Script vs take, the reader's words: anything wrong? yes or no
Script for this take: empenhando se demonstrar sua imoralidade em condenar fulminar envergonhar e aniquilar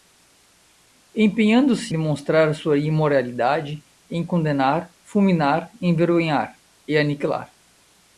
no